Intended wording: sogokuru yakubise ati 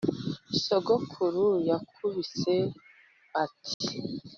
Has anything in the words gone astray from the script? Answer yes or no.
no